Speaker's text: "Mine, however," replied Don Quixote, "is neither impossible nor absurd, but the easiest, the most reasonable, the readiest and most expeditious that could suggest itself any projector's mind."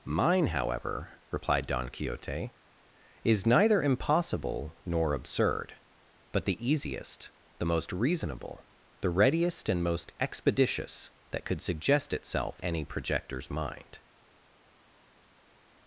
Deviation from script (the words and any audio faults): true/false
false